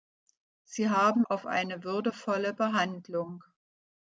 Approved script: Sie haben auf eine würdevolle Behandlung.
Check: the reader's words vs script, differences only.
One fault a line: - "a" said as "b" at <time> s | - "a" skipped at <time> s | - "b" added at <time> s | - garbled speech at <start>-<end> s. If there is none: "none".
none